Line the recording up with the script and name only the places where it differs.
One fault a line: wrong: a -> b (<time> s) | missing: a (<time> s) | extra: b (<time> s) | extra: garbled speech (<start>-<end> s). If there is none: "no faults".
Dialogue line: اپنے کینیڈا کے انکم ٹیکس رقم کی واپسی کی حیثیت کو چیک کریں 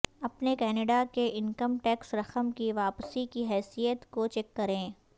no faults